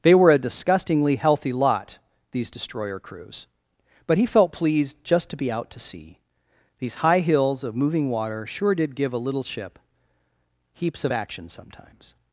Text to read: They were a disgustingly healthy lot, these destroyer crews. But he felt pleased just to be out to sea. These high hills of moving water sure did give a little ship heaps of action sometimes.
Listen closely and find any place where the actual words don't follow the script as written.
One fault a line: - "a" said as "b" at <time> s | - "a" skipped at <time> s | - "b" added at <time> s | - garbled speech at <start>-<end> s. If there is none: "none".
none